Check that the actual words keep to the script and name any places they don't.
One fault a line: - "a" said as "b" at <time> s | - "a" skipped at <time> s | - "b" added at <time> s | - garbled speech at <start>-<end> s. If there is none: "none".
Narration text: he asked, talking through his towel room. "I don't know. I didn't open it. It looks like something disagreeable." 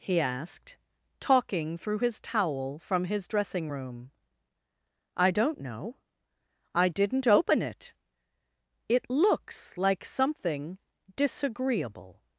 - "from his dressing" added at 2.8 s